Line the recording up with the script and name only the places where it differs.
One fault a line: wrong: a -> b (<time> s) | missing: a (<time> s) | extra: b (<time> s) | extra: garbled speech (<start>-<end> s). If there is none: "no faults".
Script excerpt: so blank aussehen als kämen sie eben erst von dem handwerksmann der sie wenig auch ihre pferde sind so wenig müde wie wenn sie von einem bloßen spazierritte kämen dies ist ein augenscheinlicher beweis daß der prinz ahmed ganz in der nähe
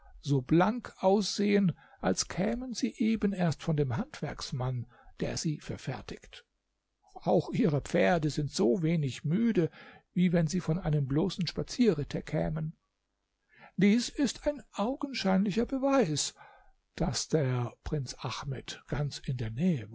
wrong: wenig -> verfertigt (5.6 s)